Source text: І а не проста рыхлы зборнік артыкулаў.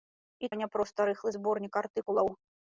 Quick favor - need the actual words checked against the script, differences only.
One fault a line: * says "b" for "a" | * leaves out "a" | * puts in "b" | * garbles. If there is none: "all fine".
all fine